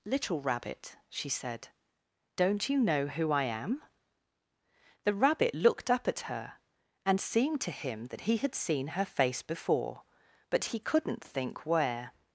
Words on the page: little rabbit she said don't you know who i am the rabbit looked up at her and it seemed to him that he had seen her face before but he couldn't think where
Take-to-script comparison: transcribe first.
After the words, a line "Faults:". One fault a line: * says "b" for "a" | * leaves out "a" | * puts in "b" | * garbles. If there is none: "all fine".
little rabbit she said don't you know who i am the rabbit looked up at her and seemed to him that he had seen her face before but he couldn't think where
Faults:
* leaves out "it"